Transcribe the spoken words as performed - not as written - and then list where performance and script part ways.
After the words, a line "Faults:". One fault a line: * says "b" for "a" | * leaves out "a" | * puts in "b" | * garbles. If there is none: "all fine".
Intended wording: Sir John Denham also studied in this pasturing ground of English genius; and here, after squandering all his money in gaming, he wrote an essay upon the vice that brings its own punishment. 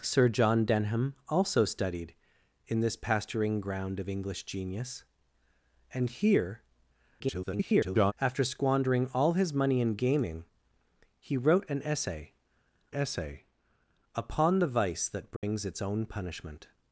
Sir John Denham also studied in this pasturing ground of English genius; and here, [garbled] after squandering all his money in gaming, he wrote an essay essay upon the vice that brings its own punishment.
Faults:
* garbles
* puts in "essay"